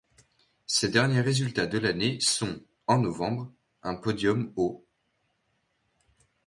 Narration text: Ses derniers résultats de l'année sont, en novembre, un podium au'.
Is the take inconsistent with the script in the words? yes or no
no